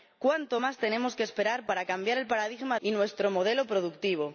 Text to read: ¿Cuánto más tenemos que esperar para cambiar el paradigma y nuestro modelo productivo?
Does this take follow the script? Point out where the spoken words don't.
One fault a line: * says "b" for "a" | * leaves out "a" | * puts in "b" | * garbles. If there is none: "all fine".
all fine